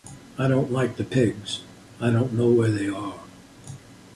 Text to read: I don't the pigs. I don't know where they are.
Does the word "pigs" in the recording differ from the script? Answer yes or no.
no